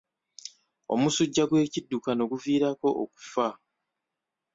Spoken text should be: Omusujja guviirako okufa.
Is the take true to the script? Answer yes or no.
no